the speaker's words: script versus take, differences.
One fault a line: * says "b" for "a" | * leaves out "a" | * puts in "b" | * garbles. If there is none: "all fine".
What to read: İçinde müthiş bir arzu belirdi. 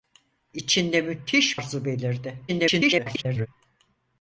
* leaves out "bir"
* garbles